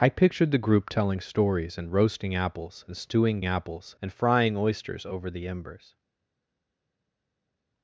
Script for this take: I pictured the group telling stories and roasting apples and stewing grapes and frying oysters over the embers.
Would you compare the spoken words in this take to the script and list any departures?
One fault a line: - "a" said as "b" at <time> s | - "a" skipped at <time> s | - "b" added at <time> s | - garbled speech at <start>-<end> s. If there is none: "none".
- "grapes" said as "apples" at 3.4 s